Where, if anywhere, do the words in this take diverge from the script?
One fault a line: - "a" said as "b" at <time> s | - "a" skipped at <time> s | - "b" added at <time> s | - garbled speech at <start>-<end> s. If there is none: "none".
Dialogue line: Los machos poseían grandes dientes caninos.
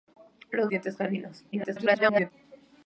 - "machos poseían grandes" skipped at 0.7 s
- garbled speech at 1.5-2.3 s